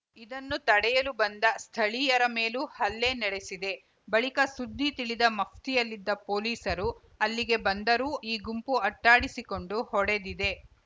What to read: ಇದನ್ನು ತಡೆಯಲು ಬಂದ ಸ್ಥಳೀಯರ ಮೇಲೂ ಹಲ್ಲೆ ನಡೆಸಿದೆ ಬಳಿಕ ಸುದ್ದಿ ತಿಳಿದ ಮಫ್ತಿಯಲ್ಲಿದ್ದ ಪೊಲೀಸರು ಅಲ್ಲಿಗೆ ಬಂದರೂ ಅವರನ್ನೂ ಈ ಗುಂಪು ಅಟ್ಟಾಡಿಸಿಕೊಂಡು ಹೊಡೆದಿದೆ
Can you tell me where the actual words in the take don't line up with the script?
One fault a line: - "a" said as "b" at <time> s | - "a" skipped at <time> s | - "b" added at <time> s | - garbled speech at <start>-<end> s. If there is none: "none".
- "ಅವರನ್ನೂ" skipped at 8.1 s